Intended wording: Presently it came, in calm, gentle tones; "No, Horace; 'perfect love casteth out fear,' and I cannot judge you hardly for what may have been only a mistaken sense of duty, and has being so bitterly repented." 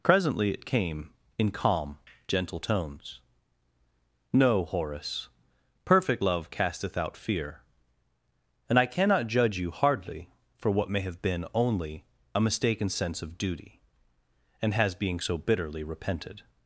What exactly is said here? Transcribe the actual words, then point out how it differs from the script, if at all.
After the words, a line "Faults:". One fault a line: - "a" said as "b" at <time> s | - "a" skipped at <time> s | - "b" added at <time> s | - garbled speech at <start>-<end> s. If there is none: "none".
Presently it came, in calm, gentle tones; "No, Horace; 'perfect love casteth out fear,' and I cannot judge you hardly for what may have been only a mistaken sense of duty, and has being so bitterly repented."
Faults:
none